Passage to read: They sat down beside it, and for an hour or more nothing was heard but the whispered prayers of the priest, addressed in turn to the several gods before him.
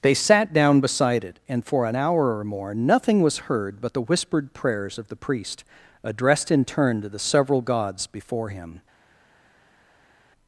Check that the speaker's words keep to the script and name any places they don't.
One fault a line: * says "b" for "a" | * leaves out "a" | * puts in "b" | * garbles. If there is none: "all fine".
all fine